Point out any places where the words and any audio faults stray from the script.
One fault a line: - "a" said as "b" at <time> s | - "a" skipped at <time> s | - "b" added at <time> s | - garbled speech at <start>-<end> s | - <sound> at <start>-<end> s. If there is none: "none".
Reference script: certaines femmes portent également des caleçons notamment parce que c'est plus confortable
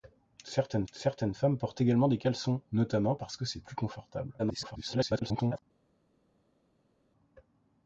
- "certaines" added at 0.9 s
- garbled speech at 4.4-5.6 s